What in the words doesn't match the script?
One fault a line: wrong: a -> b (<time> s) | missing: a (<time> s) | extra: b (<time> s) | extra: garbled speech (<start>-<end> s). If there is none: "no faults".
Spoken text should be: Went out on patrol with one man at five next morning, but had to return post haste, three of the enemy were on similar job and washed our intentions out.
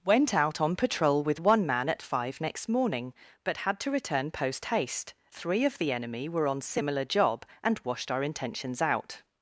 no faults